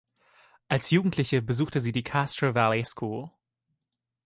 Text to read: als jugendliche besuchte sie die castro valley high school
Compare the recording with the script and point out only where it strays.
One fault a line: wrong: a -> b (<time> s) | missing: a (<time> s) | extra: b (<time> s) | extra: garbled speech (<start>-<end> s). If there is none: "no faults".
missing: high (2.8 s)